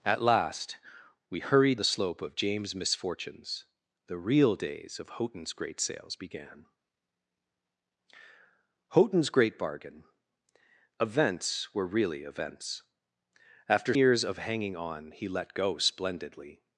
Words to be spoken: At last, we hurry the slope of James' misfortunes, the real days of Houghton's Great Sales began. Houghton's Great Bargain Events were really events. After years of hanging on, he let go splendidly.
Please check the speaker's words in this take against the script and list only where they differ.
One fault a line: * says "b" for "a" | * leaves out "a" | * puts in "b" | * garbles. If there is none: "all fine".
all fine